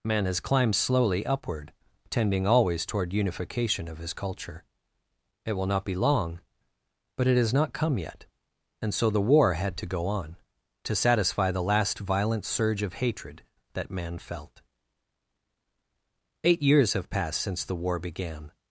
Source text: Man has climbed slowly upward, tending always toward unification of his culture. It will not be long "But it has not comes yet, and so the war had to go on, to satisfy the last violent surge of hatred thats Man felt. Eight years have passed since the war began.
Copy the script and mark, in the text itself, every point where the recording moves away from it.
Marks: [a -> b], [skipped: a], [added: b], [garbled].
Man has climbed slowly upward, tending always toward unification of his culture. It will not be long "But it has not [comes -> come] yet, and so the war had to go on, to satisfy the last violent surge of hatred [thats -> that] Man felt. Eight years have passed since the war began.